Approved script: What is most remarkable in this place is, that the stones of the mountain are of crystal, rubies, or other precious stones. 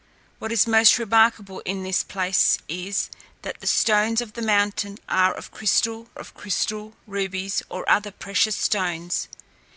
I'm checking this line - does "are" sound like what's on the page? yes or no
yes